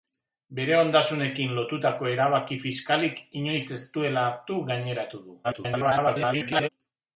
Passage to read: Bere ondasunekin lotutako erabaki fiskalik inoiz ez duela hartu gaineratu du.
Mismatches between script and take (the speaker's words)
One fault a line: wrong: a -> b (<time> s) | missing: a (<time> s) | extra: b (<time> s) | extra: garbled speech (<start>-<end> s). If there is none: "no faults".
extra: garbled speech (5.4-6.7 s)